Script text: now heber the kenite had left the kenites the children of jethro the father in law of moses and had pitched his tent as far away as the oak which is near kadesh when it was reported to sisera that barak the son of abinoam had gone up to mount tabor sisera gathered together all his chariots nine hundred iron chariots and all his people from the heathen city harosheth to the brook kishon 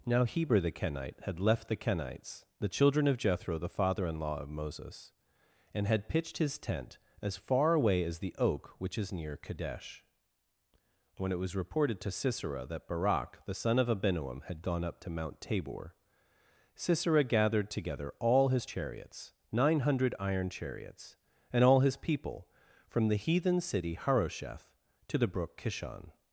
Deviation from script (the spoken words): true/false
false